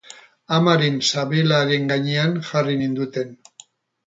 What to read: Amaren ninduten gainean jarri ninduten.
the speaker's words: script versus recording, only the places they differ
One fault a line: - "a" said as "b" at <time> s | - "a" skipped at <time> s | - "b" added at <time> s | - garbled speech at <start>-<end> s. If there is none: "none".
- "ninduten" said as "sabelaren" at 1.1 s